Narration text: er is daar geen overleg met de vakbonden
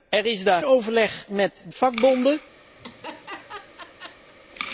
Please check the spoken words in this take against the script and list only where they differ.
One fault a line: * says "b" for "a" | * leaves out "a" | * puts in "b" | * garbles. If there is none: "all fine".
* leaves out "geen"
* leaves out "de"